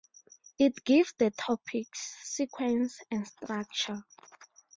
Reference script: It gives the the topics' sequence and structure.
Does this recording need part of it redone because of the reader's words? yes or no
yes